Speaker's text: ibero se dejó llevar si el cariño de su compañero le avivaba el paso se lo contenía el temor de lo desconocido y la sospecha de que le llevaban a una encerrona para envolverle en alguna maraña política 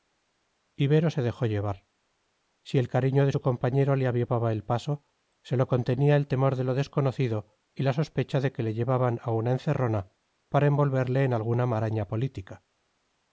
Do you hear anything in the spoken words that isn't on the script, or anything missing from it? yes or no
no